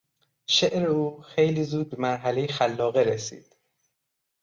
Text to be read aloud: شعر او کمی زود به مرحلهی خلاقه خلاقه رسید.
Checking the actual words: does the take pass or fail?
fail